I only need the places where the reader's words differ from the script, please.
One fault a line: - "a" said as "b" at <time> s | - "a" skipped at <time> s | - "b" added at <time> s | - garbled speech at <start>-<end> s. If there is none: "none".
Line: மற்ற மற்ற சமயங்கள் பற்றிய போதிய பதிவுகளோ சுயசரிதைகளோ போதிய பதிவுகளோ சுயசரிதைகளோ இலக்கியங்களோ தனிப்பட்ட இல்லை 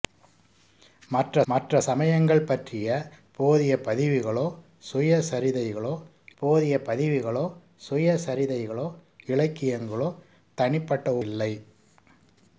none